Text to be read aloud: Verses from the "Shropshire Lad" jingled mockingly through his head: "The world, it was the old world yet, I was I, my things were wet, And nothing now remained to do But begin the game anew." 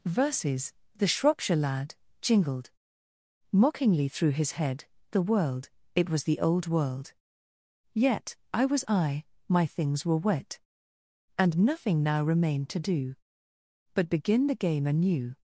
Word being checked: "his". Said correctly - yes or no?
yes